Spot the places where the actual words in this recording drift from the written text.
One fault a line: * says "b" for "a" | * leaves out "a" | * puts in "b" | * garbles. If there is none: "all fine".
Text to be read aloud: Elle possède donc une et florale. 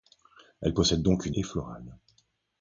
all fine